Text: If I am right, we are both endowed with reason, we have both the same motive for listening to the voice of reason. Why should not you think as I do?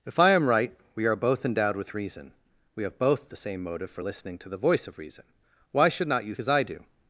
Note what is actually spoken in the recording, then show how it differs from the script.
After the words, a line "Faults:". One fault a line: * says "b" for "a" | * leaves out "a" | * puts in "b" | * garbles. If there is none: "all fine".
If I am right, we are both endowed with reason, we have both the same motive for listening to the voice of reason. Why should not you as I do?
Faults:
* leaves out "think"